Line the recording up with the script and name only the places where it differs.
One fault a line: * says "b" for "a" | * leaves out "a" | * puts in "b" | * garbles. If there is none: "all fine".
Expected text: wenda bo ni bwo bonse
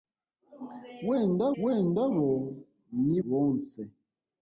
* puts in "wenda"
* leaves out "bwo"